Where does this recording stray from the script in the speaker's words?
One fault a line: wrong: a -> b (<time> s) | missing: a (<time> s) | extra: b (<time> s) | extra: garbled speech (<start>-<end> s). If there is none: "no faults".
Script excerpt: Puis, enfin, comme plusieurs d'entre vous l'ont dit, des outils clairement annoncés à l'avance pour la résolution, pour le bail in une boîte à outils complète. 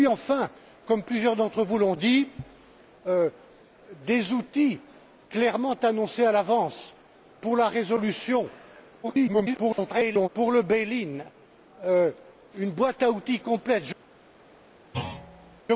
extra: garbled speech (9.0-10.3 s)